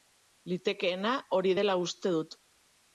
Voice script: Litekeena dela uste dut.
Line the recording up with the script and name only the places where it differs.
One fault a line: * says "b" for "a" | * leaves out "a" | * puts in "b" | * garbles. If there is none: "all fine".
* puts in "hori"